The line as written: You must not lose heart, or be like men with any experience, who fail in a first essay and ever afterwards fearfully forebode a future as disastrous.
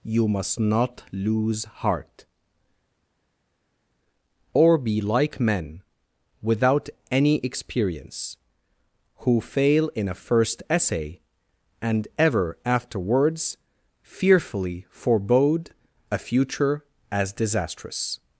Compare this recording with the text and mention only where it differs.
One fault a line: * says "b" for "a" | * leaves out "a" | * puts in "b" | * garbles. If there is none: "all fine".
* says "without" for "with"